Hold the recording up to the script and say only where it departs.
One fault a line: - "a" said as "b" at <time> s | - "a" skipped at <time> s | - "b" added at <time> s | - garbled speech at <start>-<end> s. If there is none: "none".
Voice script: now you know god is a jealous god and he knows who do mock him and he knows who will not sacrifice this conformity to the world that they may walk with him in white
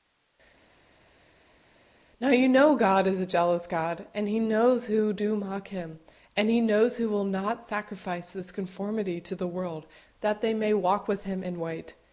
none